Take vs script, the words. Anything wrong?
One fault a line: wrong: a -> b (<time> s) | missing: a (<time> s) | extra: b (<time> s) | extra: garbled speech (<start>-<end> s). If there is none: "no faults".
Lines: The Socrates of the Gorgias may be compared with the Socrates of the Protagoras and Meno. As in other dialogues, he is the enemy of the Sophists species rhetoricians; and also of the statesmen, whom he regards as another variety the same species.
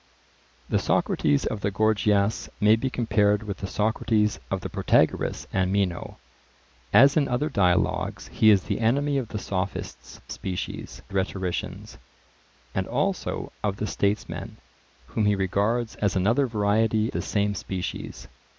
no faults